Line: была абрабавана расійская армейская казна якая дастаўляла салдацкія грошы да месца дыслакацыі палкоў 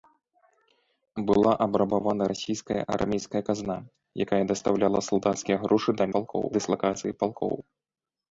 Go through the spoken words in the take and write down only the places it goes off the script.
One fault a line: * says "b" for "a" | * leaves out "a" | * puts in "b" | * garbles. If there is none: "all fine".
* says "палкоў" for "месца"